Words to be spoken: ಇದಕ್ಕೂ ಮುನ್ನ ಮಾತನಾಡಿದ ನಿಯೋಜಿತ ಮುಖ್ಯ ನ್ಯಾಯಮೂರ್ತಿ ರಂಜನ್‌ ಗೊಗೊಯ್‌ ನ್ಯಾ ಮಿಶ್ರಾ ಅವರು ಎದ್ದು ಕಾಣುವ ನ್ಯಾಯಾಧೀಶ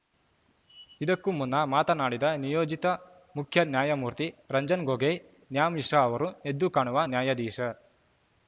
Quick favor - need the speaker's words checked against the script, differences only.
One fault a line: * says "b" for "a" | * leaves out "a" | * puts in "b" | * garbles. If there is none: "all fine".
all fine